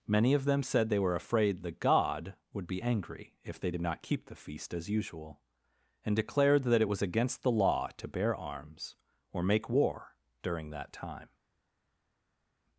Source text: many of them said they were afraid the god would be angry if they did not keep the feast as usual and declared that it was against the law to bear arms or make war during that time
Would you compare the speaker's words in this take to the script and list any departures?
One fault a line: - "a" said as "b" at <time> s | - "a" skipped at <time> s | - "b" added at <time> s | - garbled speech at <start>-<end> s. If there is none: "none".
none